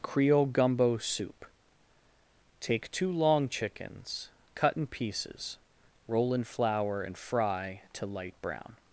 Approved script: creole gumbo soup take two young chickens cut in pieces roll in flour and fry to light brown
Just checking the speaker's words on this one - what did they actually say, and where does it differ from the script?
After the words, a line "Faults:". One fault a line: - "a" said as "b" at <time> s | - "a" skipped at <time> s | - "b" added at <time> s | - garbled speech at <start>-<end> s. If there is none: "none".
creole gumbo soup take two long chickens cut in pieces roll in flour and fry to light brown
Faults:
- "young" said as "long" at 3.1 s